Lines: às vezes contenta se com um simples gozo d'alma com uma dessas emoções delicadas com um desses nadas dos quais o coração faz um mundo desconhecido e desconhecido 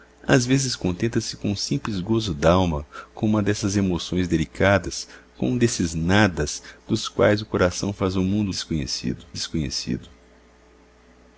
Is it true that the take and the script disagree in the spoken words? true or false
false